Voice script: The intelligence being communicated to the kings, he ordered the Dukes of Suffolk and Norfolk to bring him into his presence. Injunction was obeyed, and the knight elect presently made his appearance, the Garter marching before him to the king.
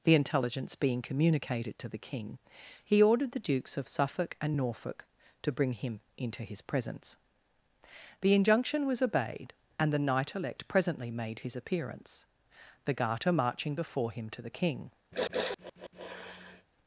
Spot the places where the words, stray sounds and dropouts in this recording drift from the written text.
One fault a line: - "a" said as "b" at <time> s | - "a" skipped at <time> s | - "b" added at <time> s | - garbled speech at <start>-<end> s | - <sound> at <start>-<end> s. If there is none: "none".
- "kings" said as "king" at 2.0 s
- "The" added at 8.2 s
- sniff at 15.1-16.7 s